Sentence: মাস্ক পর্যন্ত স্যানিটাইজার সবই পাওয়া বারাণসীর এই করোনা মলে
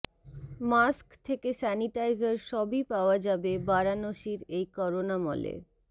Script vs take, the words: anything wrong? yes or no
yes